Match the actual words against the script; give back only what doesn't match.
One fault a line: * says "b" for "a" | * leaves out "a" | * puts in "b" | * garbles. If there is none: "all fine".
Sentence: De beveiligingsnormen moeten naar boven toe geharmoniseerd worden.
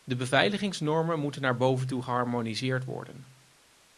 all fine